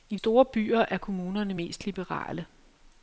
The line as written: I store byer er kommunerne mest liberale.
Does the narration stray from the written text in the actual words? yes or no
no